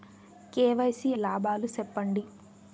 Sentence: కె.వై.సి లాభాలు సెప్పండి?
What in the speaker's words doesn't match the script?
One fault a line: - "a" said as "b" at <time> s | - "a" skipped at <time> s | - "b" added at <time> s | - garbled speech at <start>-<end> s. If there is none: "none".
none